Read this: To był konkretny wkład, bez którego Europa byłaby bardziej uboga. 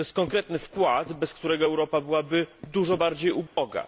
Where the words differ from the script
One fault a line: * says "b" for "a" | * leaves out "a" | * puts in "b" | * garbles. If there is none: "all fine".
* says "jest" for "był"
* puts in "dużo"